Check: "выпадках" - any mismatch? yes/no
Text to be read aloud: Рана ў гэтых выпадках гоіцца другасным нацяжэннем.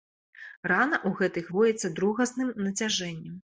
yes